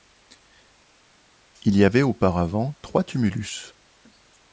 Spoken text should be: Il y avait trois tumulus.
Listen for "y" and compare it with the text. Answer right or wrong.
right